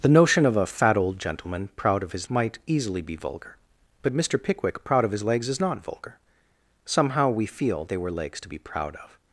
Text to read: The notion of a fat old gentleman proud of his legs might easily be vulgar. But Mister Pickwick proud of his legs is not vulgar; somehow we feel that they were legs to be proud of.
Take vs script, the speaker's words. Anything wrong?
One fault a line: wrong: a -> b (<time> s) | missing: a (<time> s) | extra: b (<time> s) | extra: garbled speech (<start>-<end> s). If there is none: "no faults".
missing: legs (2.3 s)
missing: that (7.8 s)